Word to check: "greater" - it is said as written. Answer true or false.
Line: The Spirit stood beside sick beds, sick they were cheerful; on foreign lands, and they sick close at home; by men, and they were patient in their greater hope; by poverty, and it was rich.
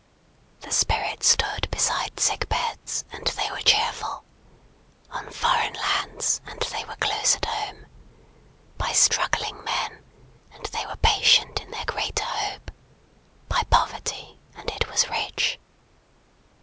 true